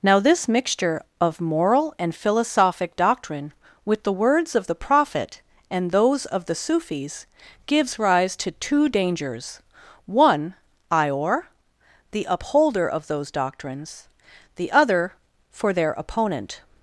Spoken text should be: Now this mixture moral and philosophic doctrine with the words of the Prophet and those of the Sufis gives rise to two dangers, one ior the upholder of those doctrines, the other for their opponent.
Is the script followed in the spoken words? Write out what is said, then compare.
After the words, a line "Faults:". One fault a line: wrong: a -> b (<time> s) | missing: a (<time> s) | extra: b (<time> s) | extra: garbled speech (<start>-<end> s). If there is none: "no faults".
Now this mixture of moral and philosophic doctrine with the words of the Prophet and those of the Sufis gives rise to two dangers, one ior the upholder of those doctrines, the other for their opponent.
Faults:
extra: of (1.2 s)